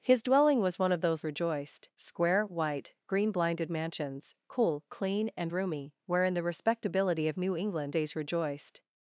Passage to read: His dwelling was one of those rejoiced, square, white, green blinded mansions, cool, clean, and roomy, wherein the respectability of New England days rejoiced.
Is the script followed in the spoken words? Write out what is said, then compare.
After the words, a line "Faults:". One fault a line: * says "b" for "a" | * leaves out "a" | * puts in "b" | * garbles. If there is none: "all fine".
His dwelling was one of those rejoiced, square, white, green blinded mansions, cool, clean, and roomy, wherein the respectability of New England days rejoiced.
Faults:
all fine